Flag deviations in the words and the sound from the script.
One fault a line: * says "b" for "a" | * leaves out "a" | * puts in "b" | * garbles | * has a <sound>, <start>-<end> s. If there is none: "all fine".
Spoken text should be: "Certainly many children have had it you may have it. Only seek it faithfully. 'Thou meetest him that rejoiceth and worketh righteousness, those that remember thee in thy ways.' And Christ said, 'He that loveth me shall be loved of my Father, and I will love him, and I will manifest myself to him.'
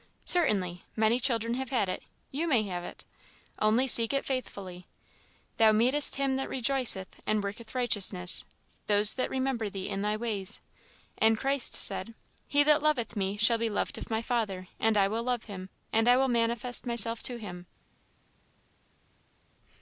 all fine